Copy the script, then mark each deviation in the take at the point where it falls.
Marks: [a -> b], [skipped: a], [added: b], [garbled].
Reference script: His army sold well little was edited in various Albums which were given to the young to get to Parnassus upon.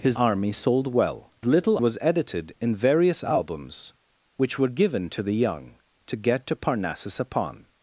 His army sold well little was edited in various Albums which were given to the young to get to Parnassus upon.